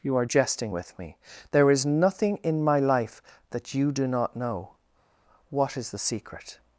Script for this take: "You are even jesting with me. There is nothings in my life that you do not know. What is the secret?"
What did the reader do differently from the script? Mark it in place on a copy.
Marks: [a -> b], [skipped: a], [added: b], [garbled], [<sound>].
"You are [skipped: even] jesting with me. There is [nothings -> nothing] in my life that you do not know. What is the secret?"